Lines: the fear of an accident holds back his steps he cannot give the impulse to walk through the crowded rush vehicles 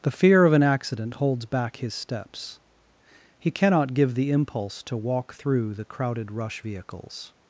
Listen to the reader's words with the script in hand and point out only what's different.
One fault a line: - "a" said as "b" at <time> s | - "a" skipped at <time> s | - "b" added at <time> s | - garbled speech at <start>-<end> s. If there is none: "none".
none